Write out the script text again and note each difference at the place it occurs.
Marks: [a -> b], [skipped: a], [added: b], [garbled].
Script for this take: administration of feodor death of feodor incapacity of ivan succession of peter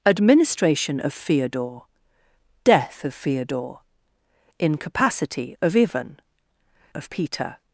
administration of feodor death of feodor incapacity of ivan [skipped: succession] of peter